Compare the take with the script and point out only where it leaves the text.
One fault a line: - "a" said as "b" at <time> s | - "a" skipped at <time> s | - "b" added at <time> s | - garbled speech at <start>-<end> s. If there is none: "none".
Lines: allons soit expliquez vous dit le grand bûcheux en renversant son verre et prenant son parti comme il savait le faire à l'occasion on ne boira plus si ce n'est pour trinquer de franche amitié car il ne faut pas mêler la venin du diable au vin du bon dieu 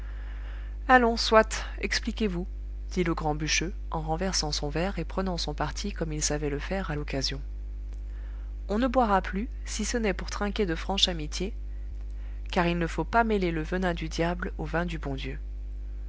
- "la" said as "le" at 13.5 s